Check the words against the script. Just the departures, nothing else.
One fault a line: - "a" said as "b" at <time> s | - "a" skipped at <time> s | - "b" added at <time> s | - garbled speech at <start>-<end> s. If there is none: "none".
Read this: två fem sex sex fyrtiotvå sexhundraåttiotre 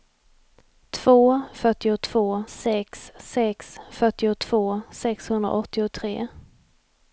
- "fem" said as "fyrtiotvå" at 1.5 s